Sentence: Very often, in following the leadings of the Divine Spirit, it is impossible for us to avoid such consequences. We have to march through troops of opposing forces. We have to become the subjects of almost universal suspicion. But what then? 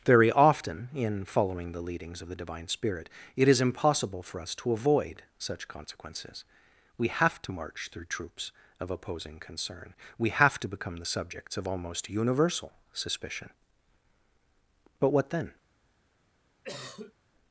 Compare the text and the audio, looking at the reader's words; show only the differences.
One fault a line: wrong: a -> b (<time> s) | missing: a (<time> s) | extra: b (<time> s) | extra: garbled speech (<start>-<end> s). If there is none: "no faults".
wrong: forces -> concern (9.4 s)